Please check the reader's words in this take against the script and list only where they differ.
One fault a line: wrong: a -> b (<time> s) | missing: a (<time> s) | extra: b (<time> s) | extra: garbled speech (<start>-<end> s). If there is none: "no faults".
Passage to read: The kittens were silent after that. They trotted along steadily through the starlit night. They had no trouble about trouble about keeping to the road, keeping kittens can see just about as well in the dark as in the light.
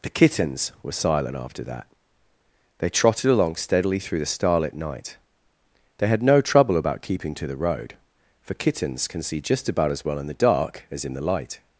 missing: trouble about (7.0 s)
wrong: keeping -> for (8.4 s)